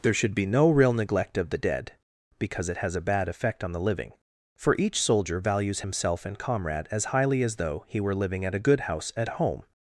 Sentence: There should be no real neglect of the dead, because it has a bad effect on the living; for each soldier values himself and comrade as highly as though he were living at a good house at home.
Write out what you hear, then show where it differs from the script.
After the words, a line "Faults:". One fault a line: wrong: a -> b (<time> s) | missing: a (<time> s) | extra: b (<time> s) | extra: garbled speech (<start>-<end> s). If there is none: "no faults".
There should be no real neglect of the dead, because it has a bad effect on the living; for each soldier values himself and comrade as highly as though he were living at a good house at home.
Faults:
no faults